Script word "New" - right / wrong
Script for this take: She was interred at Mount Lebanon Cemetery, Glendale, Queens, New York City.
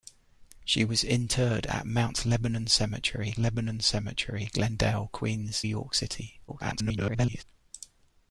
wrong